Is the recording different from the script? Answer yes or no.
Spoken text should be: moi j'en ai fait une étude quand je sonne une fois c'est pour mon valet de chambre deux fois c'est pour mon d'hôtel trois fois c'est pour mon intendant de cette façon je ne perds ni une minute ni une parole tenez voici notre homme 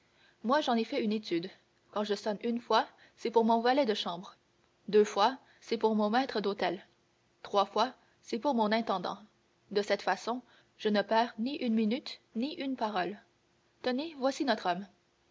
yes